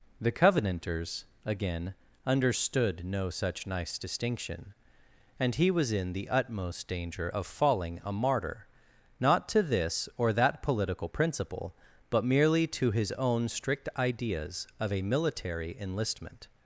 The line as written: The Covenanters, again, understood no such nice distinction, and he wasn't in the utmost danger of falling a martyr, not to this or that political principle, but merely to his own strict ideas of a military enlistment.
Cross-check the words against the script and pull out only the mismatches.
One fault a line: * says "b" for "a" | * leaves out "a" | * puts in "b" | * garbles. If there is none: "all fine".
* says "was" for "wasn't"